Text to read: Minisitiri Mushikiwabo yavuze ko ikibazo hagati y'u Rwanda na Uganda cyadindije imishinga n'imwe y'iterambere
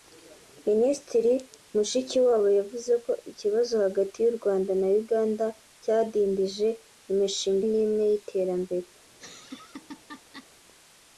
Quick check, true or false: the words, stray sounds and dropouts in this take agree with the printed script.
false